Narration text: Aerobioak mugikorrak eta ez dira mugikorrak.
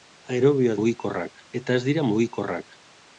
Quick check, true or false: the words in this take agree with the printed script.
true